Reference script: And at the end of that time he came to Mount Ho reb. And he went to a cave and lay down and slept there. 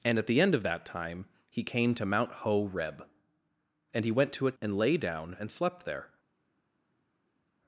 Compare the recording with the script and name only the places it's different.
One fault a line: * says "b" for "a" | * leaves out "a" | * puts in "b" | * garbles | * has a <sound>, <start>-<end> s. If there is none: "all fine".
* leaves out "cave"